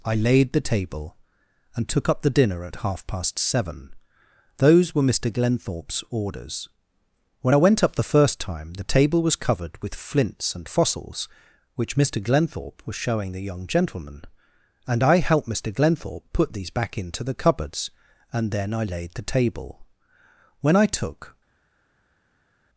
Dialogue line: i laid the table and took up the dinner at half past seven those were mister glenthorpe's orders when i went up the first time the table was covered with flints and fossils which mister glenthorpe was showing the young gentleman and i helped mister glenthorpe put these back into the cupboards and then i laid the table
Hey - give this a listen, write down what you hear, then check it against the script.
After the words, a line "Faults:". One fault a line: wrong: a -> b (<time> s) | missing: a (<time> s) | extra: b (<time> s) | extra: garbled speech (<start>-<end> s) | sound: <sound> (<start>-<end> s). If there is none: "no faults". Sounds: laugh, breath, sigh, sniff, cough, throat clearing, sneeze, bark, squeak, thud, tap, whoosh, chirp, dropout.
i laid the table and took up the dinner at half past seven those were mister glenthorpe's orders when i went up the first time the table was covered with flints and fossils which mister glenthorpe was showing the young gentleman and i helped mister glenthorpe put these back into the cupboards and then i laid the table when i took
Faults:
extra: when i took (20.6 s)